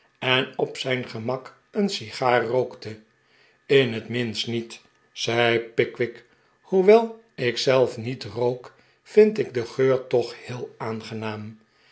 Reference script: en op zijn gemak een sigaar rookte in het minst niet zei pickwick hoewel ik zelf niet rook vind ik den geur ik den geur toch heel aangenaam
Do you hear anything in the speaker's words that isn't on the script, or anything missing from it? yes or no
yes